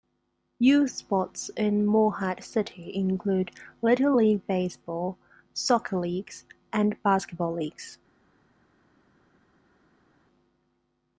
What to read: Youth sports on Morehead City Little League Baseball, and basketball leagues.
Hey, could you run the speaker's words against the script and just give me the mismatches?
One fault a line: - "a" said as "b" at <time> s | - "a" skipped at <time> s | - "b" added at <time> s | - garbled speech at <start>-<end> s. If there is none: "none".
- "on" said as "in" at 1.6 s
- "include" added at 3.0 s
- "soccer leagues" added at 5.5 s